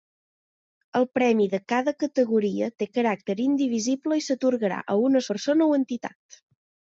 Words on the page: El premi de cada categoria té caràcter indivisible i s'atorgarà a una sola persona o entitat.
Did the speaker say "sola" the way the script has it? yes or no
no